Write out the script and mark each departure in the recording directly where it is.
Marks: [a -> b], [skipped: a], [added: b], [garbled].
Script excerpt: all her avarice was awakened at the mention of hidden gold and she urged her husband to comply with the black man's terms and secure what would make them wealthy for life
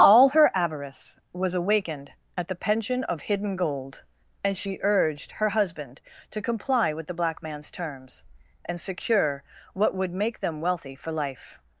all her avarice was awakened at the [mention -> pension] of hidden gold and she urged her husband to comply with the black man's terms and secure what would make them wealthy for life